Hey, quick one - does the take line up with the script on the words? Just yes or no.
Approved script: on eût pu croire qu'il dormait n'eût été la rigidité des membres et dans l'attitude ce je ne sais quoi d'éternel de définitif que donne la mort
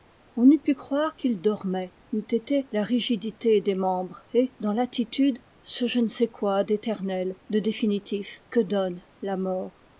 yes